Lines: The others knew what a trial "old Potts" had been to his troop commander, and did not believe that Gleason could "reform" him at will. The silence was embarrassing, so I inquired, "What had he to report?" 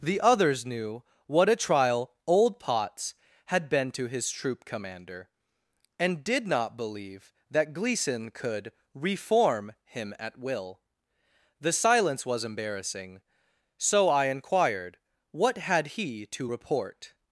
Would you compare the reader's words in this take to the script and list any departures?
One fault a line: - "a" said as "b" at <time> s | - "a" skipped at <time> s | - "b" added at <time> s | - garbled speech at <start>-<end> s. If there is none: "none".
none